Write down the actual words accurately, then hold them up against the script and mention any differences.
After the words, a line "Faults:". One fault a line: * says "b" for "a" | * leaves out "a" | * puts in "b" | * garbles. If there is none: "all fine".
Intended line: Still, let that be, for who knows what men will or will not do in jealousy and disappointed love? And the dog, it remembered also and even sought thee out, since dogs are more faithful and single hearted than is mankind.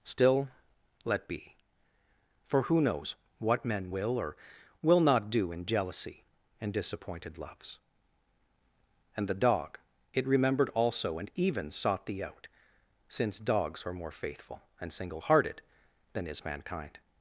Still, let be, for who knows what men will or will not do in jealousy and disappointed loves? And the dog, it remembered also and even sought thee out, since dogs are more faithful and single hearted than is mankind.
Faults:
* leaves out "that"
* says "loves" for "love"